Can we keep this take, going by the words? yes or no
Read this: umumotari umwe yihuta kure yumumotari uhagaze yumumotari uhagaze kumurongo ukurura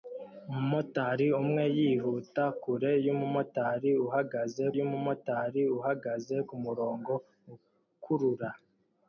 yes